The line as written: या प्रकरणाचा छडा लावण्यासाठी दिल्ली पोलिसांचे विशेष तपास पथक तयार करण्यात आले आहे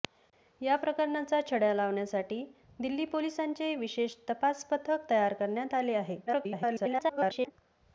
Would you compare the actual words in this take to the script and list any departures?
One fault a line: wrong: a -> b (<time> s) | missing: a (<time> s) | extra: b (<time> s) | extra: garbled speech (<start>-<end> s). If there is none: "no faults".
extra: garbled speech (6.3-7.5 s)